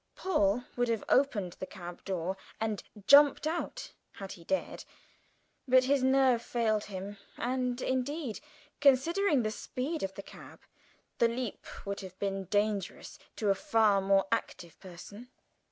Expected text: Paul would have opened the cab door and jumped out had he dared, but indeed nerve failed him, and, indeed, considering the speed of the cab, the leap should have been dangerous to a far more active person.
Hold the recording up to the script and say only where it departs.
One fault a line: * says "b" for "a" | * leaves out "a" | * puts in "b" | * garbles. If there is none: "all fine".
* says "his" for "indeed"
* says "would" for "should"